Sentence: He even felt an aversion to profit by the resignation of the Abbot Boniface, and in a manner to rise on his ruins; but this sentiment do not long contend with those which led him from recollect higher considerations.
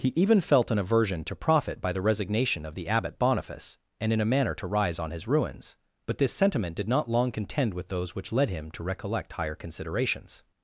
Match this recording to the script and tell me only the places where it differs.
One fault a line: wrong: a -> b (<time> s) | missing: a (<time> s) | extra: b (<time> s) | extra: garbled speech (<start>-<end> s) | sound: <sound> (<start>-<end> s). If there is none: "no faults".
wrong: do -> did (6.8 s)
wrong: from -> to (8.7 s)